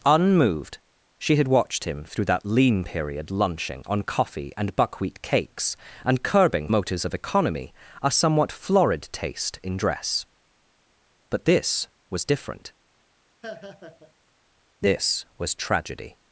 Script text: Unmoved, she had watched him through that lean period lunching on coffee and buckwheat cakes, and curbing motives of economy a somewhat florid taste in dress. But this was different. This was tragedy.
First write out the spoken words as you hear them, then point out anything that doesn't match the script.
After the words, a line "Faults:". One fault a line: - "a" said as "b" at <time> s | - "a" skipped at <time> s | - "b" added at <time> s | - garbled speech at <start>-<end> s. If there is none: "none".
Unmoved, she had watched him through that lean period lunching on coffee and buckwheat cakes, and curbing motives of economy a somewhat florid taste in dress. But this was different. This was tragedy.
Faults:
none